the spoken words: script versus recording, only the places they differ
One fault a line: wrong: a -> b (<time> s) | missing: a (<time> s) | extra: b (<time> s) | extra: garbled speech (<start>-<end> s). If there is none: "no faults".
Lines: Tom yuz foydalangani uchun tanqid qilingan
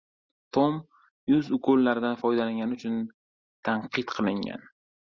extra: ukollaridan (1.6 s)